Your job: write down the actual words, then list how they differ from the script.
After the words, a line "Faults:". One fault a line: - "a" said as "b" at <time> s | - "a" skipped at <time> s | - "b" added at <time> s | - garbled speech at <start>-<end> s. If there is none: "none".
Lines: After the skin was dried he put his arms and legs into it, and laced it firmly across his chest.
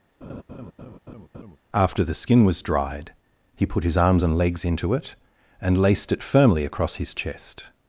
After the skin was dried he put his arms and legs into it, and laced it firmly across his chest.
Faults:
none